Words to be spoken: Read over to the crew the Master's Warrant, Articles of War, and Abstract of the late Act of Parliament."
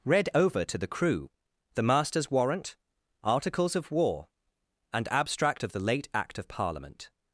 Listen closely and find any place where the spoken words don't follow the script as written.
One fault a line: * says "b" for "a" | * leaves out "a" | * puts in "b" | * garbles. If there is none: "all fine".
all fine